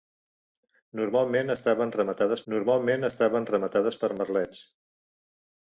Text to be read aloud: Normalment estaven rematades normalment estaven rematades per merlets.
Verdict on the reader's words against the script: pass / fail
pass